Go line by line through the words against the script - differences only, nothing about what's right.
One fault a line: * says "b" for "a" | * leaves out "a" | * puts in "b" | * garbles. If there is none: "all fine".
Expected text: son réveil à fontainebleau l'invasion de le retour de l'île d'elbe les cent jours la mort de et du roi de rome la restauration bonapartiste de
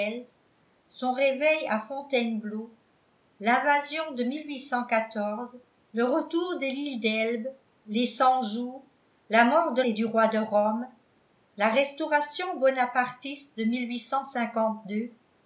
all fine